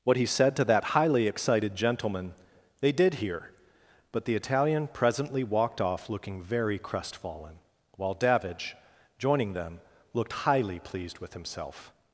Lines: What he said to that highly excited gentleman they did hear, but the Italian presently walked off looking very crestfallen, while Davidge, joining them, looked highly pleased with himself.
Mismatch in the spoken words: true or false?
false